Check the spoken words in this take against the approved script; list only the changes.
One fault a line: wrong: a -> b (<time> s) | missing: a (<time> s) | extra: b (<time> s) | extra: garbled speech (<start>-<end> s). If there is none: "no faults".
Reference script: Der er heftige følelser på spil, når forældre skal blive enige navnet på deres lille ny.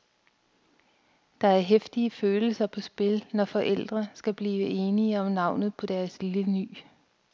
extra: om (5.2 s)